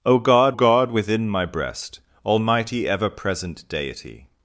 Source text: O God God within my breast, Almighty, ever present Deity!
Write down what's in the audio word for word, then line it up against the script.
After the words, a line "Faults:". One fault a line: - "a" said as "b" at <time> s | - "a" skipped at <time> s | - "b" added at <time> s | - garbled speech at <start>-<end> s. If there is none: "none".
O God God within my breast, Almighty, ever present Deity!
Faults:
none